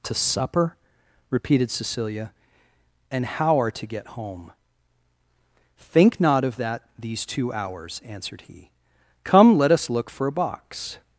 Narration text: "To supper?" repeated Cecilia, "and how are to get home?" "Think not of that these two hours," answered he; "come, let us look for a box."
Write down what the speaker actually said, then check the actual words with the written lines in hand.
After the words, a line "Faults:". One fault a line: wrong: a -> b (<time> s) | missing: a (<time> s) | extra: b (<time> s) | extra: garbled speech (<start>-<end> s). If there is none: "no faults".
"To supper?" repeated Cecilia, "and how are to get home?" "Think not of that these two hours," answered he; "come, let us look for a box."
Faults:
no faults